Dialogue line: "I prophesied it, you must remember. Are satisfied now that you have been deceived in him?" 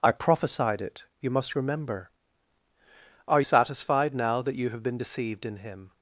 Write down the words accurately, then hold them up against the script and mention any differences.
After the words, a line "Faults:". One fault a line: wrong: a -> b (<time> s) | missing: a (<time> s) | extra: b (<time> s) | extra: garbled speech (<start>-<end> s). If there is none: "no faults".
"I prophesied it, you must remember. Are satisfied now that you have been deceived in him?"
Faults:
no faults